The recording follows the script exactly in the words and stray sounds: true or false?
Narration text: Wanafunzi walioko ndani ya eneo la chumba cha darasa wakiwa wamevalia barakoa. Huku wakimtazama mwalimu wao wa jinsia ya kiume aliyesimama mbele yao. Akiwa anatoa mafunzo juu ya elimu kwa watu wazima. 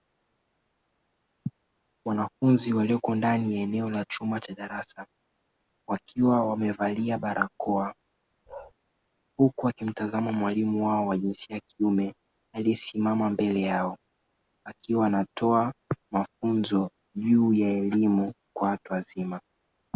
false